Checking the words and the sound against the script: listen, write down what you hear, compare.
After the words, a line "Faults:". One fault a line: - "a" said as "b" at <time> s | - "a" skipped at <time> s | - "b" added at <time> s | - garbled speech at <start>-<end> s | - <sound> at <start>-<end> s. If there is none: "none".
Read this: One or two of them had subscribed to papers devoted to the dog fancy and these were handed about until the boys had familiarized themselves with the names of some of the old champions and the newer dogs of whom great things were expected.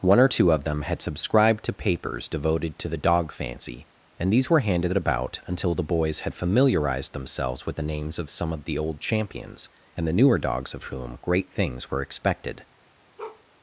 One or two of them had subscribed to papers devoted to the dog fancy and these were handed about until the boys had familiarized themselves with the names of some of the old champions and the newer dogs of whom great things were expected.
Faults:
- bark at 13.2-13.4 s